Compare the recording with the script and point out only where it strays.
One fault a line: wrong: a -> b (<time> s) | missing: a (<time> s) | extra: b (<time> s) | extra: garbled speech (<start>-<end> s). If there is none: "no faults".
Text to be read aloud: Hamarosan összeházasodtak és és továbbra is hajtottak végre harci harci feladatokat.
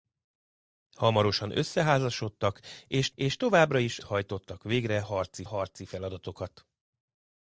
no faults